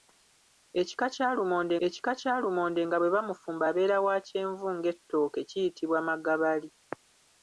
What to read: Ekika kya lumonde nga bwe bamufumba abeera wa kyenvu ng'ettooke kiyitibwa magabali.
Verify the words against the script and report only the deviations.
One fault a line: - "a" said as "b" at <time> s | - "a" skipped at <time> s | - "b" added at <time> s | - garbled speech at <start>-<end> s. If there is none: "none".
- "ekika kya lumonde" added at 1.9 s